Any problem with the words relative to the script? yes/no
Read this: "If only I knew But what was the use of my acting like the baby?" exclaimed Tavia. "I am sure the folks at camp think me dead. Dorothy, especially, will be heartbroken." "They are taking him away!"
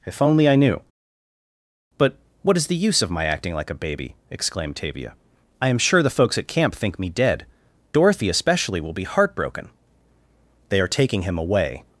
yes